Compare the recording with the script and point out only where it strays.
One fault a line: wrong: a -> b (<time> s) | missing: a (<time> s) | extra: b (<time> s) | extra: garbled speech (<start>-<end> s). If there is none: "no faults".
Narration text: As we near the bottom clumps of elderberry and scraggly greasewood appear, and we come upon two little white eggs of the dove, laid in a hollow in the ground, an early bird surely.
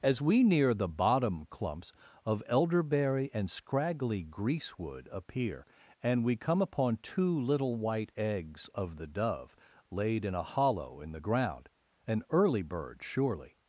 no faults